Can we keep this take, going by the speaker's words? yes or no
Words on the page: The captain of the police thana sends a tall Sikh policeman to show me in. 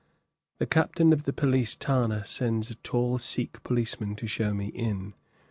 yes